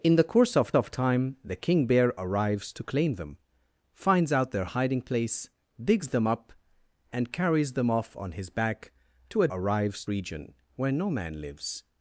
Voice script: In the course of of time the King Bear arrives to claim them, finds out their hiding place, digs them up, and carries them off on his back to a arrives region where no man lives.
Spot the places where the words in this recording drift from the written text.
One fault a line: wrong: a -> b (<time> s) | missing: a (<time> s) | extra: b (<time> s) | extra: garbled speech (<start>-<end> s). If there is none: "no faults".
no faults